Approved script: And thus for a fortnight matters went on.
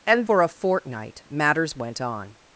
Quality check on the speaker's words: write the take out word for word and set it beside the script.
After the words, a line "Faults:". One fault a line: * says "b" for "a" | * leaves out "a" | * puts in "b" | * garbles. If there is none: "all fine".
And for a fortnight matters went on.
Faults:
* leaves out "thus"